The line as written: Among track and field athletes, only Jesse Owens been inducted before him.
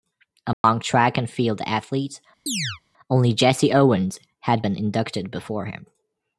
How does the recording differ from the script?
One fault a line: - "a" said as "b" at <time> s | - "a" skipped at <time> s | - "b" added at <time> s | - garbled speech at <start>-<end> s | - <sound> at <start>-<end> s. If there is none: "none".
- dropout at 0.5-0.6 s
- chirp at 2.5-2.8 s
- "had" added at 4.4 s